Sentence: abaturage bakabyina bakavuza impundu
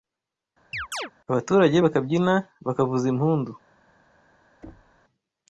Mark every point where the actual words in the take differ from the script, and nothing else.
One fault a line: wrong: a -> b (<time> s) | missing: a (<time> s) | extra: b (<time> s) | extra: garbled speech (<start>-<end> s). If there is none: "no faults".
no faults